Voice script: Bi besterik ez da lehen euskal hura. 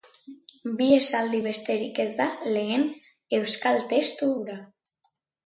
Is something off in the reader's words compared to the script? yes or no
yes